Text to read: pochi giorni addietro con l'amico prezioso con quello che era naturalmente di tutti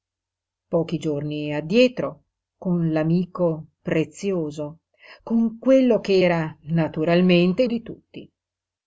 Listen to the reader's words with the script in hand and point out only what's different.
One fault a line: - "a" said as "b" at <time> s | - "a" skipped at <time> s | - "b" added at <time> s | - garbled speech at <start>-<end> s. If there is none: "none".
none